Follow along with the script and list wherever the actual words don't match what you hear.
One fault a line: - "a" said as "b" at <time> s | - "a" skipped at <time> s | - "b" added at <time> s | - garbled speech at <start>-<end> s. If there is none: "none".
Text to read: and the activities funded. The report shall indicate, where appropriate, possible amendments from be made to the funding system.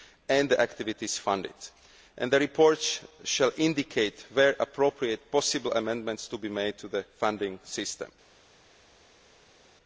- "from" said as "to" at 6.3 s